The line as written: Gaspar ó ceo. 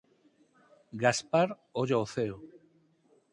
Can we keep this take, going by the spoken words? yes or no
no